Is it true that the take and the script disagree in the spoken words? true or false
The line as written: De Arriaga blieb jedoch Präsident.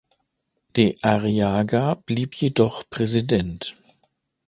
false